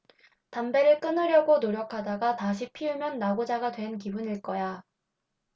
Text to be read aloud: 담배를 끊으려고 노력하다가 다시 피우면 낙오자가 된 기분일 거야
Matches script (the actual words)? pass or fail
pass